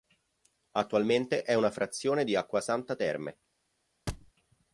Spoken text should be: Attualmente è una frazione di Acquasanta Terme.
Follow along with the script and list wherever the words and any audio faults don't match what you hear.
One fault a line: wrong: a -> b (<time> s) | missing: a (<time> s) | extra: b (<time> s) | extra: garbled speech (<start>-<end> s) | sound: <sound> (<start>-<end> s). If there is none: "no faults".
sound: thud (4.1-4.3 s)